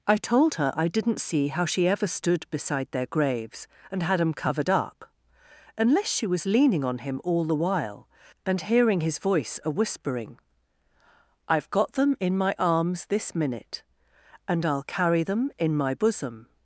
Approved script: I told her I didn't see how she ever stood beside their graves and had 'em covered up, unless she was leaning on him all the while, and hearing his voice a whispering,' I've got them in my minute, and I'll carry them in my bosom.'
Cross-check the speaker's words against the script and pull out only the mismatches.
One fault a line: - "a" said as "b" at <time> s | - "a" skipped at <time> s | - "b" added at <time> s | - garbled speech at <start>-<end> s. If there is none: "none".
- "arms this" added at 12.6 s